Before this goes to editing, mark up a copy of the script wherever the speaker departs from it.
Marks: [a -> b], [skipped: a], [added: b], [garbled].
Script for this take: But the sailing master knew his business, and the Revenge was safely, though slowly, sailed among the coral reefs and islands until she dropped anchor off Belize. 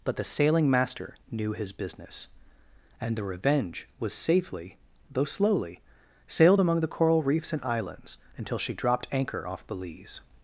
But the sailing master knew his business, and the Revenge was safely, though slowly, sailed among the coral reefs and islands until she dropped anchor off Belize.